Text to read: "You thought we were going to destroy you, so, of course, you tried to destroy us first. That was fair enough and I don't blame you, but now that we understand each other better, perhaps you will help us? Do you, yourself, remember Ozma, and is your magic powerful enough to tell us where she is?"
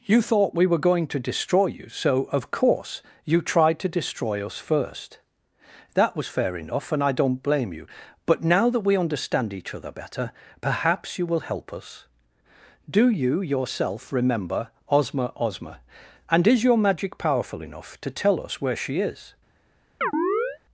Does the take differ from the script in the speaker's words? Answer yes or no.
yes